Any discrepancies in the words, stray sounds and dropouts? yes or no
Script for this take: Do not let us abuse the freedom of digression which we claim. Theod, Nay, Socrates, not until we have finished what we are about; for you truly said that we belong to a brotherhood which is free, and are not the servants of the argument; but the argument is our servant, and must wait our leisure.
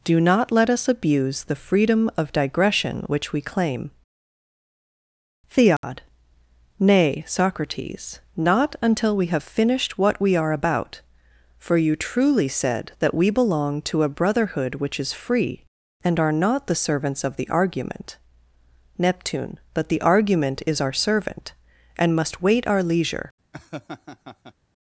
yes